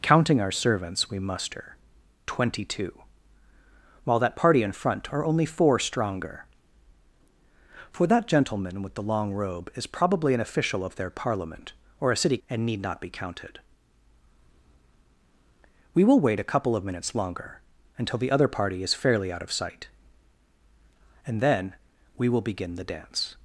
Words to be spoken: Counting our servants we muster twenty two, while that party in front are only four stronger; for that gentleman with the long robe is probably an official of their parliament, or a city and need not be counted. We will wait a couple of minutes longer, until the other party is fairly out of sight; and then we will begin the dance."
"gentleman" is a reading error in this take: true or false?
false